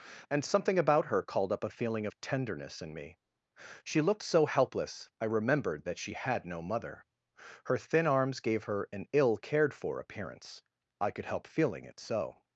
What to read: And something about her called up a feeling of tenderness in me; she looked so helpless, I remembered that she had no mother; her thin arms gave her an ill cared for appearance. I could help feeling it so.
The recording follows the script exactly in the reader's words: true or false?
true